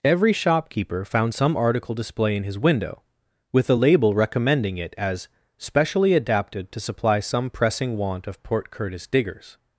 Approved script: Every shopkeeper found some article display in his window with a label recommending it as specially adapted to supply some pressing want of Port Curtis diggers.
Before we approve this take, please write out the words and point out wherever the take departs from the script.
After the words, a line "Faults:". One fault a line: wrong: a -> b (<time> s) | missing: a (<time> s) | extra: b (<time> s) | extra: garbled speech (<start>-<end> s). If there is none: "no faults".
Every shopkeeper found some article display in his window with a label recommending it as specially adapted to supply some pressing want of Port Curtis diggers.
Faults:
no faults